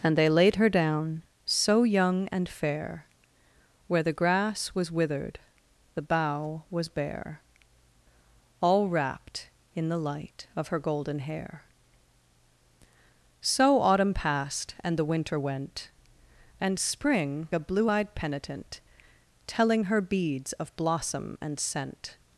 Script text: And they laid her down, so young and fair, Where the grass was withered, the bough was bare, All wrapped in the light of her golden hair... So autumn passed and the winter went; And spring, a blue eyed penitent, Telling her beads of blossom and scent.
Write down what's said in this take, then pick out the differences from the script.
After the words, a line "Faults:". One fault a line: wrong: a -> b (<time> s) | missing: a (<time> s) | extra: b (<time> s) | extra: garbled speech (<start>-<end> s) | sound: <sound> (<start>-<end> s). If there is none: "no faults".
And they laid her down, so young and fair, Where the grass was withered, the bough was bare, All wrapped in the light of her golden hair... So autumn passed and the winter went; And spring, a blue eyed penitent, Telling her beads of blossom and scent.
Faults:
no faults